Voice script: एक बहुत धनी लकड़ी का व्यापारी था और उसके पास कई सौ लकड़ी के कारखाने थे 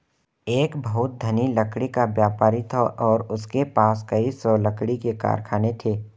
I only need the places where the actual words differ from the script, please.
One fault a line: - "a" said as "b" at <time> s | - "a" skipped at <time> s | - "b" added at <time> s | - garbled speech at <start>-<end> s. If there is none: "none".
none